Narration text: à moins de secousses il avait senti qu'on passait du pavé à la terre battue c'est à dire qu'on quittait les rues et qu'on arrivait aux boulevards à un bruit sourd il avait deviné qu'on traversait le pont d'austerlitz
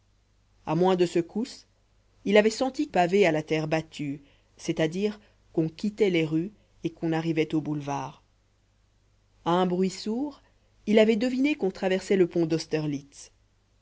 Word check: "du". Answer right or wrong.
wrong